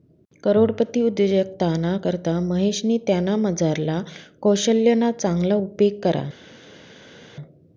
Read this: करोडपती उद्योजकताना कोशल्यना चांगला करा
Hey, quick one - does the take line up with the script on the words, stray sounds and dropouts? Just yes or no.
no